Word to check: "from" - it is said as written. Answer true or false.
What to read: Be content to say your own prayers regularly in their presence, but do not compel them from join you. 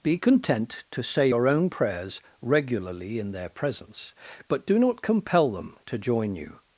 false